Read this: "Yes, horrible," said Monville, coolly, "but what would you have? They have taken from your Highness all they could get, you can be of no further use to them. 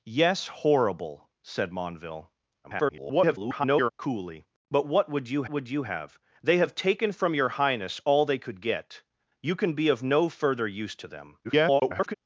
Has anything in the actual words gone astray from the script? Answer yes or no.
yes